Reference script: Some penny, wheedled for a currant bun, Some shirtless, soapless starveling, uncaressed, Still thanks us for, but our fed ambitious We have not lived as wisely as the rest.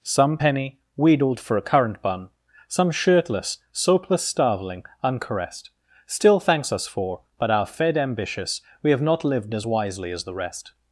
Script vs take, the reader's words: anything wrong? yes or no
no